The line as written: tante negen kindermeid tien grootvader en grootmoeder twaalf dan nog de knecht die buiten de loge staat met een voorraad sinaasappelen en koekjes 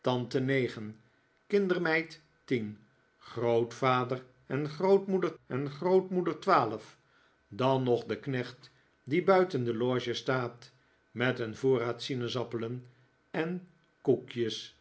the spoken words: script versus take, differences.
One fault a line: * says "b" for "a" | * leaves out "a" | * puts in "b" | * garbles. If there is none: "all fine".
* puts in "en grootmoeder"